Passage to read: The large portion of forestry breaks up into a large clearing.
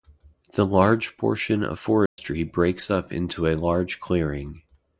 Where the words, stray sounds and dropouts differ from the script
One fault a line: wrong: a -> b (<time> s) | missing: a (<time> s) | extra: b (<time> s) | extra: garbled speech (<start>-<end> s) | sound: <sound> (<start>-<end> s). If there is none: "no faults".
sound: dropout (2.1-2.2 s)